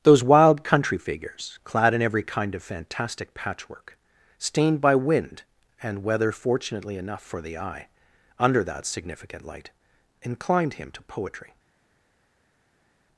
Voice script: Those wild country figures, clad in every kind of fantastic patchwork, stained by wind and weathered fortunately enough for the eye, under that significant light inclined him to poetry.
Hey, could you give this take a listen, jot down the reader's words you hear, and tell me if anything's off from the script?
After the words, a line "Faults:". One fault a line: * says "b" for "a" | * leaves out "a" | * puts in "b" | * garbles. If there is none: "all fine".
Those wild country figures, clad in every kind of fantastic patchwork, stained by wind and weather fortunately enough for the eye, under that significant light inclined him to poetry.
Faults:
* says "weather" for "weathered"